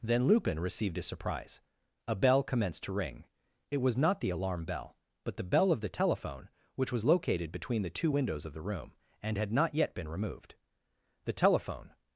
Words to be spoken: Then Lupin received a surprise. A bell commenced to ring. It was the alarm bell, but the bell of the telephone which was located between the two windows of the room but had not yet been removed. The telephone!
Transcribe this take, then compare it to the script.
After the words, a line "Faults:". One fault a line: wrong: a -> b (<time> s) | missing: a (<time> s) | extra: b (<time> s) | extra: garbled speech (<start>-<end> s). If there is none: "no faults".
Then Lupin received a surprise. A bell commenced to ring. It was not the alarm bell, but the bell of the telephone which was located between the two windows of the room and had not yet been removed. The telephone!
Faults:
extra: not (4.0 s)
wrong: but -> and (9.2 s)